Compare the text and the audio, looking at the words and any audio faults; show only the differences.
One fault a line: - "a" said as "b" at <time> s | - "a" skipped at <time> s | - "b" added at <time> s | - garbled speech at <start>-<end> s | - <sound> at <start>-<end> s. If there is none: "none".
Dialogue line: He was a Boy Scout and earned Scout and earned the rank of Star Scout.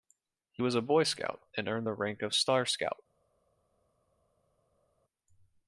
- "Scout and earned" skipped at 1.9 s